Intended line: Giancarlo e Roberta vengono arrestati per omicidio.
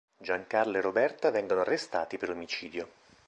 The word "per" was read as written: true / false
true